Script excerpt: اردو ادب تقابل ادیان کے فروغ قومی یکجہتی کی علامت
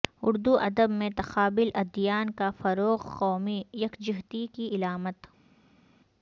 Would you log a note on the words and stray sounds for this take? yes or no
yes